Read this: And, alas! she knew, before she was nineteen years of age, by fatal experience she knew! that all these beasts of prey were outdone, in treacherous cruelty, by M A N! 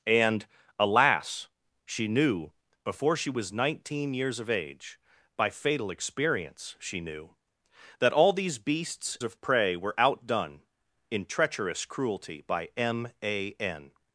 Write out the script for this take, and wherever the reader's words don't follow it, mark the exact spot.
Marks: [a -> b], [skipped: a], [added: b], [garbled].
And, alas! she knew, before she was nineteen years of age, by fatal experience she knew! that all these beasts of prey were outdone, in treacherous cruelty, by M A N!